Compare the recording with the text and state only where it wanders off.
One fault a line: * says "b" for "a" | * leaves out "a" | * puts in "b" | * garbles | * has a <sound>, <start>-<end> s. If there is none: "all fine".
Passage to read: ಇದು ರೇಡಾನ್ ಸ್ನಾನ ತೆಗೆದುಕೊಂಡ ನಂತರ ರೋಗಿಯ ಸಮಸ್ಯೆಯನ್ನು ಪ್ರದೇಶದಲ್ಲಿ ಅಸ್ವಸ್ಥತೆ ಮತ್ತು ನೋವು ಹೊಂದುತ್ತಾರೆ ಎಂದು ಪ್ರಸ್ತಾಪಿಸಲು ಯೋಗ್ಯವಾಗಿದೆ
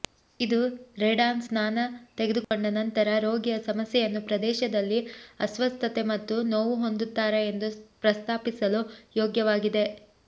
* has a dropout, 2.4-2.5 s